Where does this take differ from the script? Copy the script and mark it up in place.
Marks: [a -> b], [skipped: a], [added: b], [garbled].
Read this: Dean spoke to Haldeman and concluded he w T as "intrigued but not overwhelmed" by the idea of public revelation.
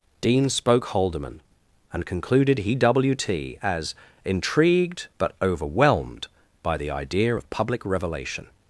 Dean spoke [skipped: to] Haldeman and concluded he w T as "intrigued but [skipped: not] overwhelmed" by the idea of public revelation.